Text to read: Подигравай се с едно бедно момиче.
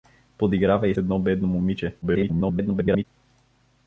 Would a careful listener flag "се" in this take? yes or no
yes